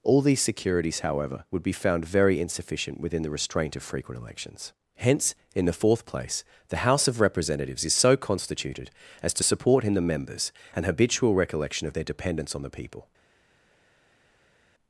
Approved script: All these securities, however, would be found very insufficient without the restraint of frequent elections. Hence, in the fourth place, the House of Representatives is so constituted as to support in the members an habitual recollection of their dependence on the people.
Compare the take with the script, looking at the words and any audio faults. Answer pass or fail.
fail